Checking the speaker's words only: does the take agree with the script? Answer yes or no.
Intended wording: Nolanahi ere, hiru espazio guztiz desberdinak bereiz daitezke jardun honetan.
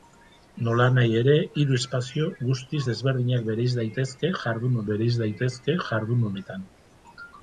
no